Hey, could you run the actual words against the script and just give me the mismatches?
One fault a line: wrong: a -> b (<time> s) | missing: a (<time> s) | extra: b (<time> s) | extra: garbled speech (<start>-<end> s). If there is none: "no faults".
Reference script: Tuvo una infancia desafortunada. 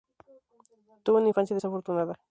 no faults